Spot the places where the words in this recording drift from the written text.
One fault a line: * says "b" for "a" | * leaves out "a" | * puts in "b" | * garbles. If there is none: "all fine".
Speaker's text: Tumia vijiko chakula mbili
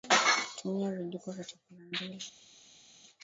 * puts in "vya"